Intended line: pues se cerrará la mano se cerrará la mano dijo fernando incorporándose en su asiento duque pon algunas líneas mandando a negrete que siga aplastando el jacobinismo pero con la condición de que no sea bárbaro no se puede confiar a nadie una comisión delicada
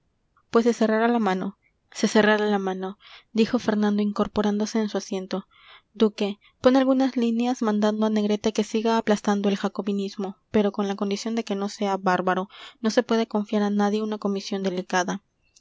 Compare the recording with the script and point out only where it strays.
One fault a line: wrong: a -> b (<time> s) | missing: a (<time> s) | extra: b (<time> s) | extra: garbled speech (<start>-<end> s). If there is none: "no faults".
no faults